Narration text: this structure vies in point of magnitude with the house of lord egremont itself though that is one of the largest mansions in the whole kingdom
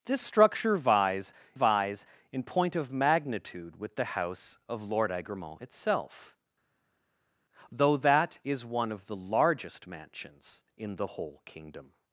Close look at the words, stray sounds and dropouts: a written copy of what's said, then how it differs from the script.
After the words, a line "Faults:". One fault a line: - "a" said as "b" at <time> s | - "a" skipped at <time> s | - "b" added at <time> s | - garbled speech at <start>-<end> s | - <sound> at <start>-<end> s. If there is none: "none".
this structure vies vies in point of magnitude with the house of lord egremont itself though that is one of the largest mansions in the whole kingdom
Faults:
- "vies" added at 1.5 s